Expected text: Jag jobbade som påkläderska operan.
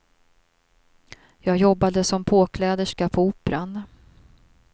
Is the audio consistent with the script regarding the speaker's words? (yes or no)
no